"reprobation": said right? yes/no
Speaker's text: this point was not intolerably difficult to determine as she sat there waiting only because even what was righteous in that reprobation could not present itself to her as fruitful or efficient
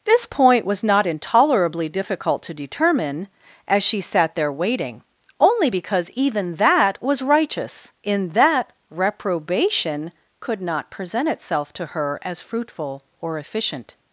yes